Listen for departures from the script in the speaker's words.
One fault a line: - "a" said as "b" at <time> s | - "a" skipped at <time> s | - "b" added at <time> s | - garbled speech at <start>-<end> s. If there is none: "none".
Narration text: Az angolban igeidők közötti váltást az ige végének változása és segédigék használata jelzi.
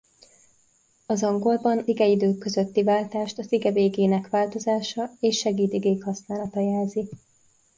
none